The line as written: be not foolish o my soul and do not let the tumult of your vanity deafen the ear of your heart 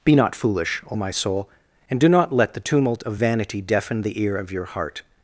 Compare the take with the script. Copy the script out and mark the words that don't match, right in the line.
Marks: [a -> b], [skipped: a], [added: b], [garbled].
be not foolish o my soul and do not let the tumult of [skipped: your] vanity deafen the ear of your heart